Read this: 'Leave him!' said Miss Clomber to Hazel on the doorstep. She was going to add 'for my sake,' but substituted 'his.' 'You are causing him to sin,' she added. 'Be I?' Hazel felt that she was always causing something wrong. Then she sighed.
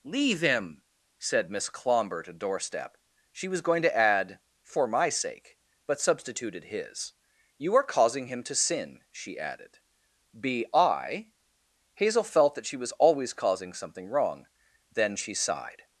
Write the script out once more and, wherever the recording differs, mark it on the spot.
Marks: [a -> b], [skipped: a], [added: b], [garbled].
'Leave him!' said Miss Clomber to [skipped: Hazel on the] doorstep. She was going to add 'for my sake,' but substituted 'his.' 'You are causing him to sin,' she added. 'Be I?' Hazel felt that she was always causing something wrong. Then she sighed.